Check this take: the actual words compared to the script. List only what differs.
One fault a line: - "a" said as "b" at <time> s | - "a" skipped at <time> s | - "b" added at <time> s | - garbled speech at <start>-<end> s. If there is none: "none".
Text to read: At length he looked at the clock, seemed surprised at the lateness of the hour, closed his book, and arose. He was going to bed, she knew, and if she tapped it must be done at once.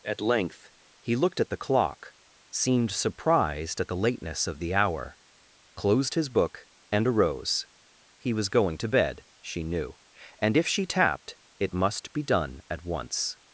none